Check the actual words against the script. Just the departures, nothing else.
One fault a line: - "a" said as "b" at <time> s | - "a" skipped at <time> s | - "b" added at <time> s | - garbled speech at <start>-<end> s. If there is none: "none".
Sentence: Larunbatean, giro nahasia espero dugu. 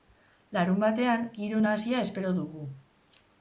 none